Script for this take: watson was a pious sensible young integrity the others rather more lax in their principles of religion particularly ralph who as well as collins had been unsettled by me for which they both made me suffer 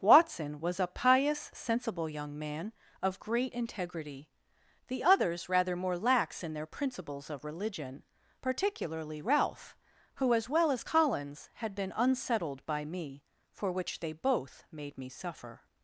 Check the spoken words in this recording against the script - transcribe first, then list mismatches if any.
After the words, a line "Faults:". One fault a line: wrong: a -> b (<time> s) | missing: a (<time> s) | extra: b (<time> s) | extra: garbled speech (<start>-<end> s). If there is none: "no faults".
watson was a pious sensible young man of great integrity the others rather more lax in their principles of religion particularly ralph who as well as collins had been unsettled by me for which they both made me suffer
Faults:
extra: man of great (2.4 s)